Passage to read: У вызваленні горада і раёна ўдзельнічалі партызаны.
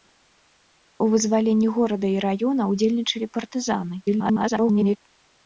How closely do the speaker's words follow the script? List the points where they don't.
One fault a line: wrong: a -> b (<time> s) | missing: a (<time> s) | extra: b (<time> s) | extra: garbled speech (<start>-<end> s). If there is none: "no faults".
extra: garbled speech (4.1-5.0 s)